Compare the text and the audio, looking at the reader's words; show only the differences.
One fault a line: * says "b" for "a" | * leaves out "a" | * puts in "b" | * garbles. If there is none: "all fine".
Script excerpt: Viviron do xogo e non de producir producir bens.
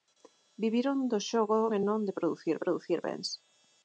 all fine